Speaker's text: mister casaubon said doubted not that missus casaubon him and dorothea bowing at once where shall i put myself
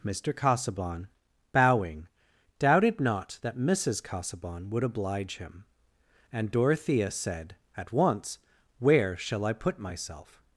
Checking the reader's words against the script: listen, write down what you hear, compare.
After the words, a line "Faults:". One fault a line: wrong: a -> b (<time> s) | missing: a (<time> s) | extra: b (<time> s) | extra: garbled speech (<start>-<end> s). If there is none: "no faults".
mister casaubon bowing doubted not that missus casaubon would oblige him and dorothea said at once where shall i put myself
Faults:
wrong: said -> bowing (1.5 s)
extra: would oblige (4.7 s)
wrong: bowing -> said (7.1 s)